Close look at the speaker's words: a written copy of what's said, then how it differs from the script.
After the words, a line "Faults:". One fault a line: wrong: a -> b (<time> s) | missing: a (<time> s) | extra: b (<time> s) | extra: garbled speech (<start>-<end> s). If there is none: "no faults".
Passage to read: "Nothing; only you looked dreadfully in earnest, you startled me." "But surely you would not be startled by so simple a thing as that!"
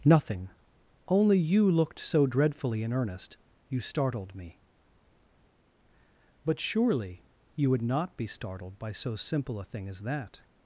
"Nothing; only you looked so dreadfully in earnest, you startled me." "But surely you would not be startled by so simple a thing as that!"
Faults:
extra: so (2.0 s)